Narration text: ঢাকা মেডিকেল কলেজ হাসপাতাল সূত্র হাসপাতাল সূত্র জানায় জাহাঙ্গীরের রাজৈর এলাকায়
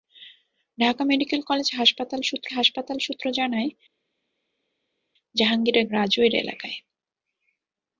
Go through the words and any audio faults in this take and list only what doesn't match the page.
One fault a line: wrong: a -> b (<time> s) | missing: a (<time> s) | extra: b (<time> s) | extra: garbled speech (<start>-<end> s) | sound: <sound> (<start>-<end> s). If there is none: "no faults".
no faults